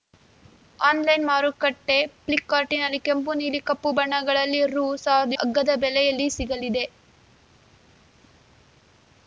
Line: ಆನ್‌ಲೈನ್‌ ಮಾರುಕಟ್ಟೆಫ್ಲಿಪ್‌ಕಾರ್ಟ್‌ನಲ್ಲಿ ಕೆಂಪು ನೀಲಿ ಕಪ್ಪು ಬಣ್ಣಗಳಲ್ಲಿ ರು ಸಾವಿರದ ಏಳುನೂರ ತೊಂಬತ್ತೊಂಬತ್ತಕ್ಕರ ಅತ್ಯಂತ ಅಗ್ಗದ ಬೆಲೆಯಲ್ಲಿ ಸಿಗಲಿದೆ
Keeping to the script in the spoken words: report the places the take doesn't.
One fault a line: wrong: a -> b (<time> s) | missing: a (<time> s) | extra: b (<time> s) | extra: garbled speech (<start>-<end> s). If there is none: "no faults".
missing: ಏಳುನೂರ ತೊಂಬತ್ತೊಂಬತ್ತಕ್ಕರ ಅತ್ಯಂತ (5.4 s)